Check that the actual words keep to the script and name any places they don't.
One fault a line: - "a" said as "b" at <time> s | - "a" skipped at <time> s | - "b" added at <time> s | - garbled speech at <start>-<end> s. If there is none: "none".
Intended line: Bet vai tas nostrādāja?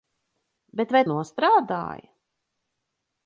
- "tas" skipped at 1.0 s